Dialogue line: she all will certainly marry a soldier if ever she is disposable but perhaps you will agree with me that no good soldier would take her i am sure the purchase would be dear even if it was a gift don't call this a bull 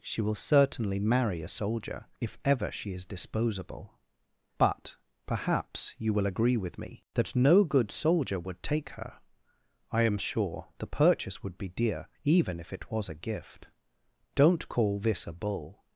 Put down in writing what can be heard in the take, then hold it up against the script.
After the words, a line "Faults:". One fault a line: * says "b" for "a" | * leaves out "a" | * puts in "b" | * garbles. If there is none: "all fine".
she will certainly marry a soldier if ever she is disposable but perhaps you will agree with me that no good soldier would take her i am sure the purchase would be dear even if it was a gift don't call this a bull
Faults:
* leaves out "all"